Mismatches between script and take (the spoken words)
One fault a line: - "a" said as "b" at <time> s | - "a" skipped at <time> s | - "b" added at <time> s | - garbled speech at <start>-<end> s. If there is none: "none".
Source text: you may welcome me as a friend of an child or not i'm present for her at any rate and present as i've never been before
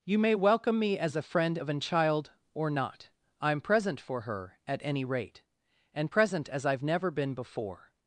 none